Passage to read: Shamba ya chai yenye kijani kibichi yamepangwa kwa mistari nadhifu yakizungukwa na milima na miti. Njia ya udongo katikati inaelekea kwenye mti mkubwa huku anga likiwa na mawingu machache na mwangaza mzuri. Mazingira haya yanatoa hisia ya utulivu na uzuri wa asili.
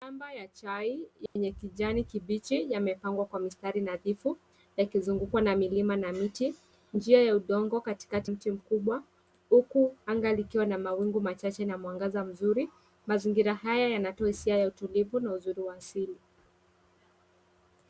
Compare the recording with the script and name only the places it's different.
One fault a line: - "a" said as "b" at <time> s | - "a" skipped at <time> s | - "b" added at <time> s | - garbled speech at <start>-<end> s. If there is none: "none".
- "inaelekea kwenye" skipped at 8.3 s